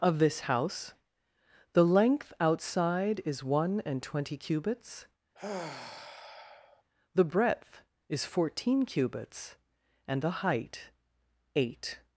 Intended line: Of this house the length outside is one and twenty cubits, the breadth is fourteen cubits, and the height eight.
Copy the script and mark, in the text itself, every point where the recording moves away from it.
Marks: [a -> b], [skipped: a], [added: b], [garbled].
Of this house the length outside is one and twenty cubits, the breadth is fourteen cubits, and the height eight.